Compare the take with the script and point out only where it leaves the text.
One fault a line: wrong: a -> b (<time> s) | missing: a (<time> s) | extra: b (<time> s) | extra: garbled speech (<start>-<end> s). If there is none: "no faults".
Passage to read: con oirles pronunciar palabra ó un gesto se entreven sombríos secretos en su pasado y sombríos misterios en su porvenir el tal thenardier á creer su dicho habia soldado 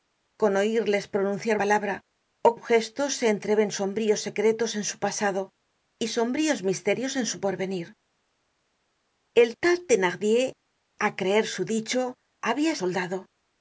no faults